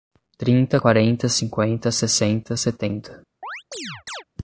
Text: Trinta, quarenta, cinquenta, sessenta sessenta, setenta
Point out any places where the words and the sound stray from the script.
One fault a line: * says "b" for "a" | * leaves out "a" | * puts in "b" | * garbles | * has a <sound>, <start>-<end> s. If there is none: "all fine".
* leaves out "sessenta"
* has a chirp, 3.4-4.2 s